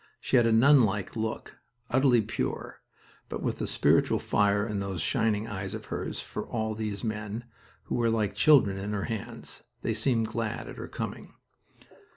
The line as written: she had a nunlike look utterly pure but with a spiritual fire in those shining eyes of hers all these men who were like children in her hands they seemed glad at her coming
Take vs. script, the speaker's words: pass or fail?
fail